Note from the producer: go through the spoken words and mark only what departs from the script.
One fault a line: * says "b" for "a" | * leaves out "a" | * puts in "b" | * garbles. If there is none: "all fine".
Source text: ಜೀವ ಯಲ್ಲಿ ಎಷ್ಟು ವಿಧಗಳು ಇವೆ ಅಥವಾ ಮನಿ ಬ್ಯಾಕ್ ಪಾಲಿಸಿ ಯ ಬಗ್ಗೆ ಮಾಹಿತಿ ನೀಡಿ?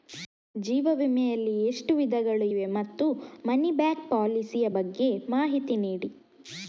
* puts in "ವಿಮೆ"
* says "ಮತ್ತು" for "ಅಥವಾ"